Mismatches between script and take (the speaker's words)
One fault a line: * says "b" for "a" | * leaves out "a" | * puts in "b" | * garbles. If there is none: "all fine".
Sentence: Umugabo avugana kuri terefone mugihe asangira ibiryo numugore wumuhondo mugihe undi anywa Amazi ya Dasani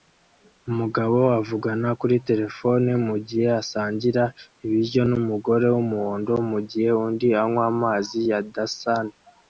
all fine